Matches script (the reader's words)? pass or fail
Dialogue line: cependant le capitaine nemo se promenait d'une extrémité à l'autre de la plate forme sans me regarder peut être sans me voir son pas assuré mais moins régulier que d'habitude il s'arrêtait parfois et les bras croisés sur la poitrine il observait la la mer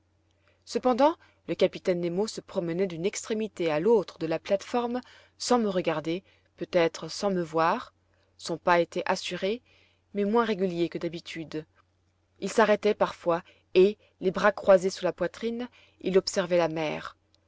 fail